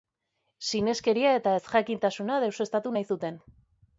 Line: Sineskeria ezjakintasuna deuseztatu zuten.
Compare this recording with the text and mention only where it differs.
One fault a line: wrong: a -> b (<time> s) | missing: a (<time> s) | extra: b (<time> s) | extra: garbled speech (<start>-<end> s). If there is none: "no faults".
extra: eta (1.4 s)
extra: nahi (3.0 s)